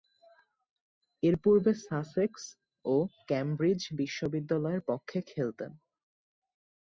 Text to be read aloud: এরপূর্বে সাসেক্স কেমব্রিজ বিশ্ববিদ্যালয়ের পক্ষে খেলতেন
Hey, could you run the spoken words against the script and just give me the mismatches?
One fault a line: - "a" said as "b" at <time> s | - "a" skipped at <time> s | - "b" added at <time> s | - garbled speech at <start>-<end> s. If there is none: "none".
- "ও" added at 2.9 s